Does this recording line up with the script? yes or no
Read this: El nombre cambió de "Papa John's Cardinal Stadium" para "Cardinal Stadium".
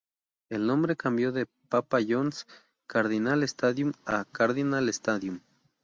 no